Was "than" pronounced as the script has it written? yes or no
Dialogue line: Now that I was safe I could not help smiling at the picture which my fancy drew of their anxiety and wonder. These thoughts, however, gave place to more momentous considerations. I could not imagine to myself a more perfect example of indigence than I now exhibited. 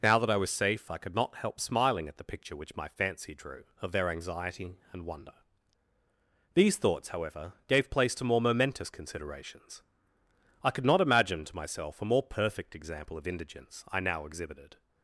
no